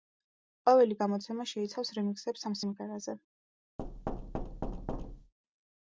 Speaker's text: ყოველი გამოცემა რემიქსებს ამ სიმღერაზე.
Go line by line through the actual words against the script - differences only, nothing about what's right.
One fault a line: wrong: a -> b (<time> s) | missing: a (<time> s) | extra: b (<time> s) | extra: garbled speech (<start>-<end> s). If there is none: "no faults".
extra: შეიცავს (1.5 s)